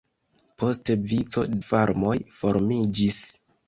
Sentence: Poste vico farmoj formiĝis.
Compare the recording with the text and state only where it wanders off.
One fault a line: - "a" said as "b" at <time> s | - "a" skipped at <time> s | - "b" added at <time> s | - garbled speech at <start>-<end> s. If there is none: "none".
none